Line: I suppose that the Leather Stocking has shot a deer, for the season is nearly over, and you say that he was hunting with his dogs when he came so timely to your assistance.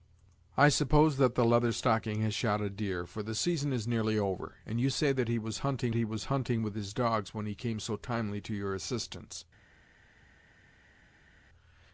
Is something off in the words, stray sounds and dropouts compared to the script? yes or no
yes